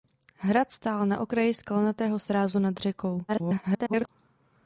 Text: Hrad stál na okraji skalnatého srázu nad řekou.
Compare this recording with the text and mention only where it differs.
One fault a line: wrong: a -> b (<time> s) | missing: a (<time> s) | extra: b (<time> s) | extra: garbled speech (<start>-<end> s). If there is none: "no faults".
extra: garbled speech (3.3-4.1 s)